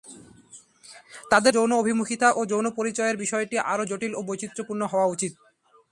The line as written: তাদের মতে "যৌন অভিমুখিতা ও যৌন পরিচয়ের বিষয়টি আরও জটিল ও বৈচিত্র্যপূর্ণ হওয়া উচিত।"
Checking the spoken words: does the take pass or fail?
fail